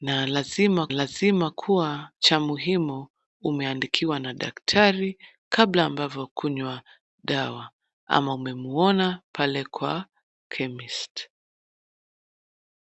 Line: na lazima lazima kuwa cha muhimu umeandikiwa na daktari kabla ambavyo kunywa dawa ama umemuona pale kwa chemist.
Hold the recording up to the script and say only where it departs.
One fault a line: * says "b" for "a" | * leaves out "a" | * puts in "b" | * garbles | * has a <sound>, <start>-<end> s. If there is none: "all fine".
all fine